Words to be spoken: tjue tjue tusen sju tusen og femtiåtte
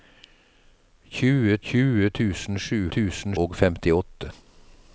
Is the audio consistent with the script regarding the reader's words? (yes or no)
yes